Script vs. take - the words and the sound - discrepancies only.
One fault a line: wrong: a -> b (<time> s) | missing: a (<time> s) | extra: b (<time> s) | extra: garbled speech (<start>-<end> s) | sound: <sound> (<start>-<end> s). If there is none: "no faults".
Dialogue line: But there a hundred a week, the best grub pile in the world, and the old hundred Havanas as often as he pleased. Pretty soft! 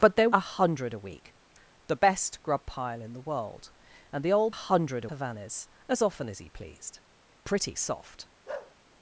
sound: bark (8.5-8.8 s)